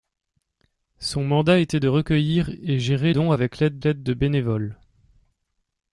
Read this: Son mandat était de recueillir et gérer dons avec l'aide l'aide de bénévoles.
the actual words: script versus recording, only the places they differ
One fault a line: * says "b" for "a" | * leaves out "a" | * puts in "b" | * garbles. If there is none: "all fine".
all fine